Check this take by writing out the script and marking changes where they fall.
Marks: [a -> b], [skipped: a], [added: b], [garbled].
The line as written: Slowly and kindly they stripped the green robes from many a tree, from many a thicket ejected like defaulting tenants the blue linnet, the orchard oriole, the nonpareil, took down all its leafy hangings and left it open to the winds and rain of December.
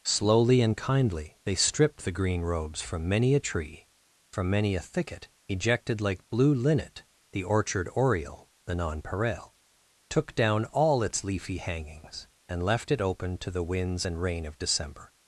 Slowly and kindly they stripped the green robes from many a tree, from many a thicket ejected like [skipped: defaulting tenants the] blue linnet, the orchard oriole, the nonpareil, took down all its leafy hangings and left it open to the winds and rain of December.